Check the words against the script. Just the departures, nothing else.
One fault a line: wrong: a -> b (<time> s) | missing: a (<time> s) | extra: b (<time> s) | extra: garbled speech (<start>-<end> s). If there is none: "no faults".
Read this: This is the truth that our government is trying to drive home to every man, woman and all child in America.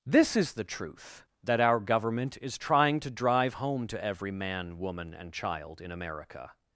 missing: all (5.3 s)